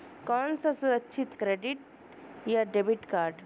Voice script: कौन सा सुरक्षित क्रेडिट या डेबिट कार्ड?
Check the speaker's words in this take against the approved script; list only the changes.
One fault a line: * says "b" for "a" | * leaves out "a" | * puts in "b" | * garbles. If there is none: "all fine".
all fine